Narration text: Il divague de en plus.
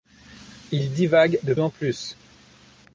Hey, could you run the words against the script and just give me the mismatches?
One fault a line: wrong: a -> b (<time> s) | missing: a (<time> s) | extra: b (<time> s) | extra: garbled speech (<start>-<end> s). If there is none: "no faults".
no faults